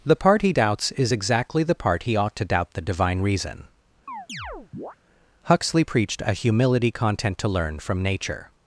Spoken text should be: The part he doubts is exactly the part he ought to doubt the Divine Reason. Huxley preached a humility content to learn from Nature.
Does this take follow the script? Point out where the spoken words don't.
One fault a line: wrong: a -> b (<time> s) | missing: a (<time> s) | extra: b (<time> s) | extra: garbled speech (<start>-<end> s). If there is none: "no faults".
no faults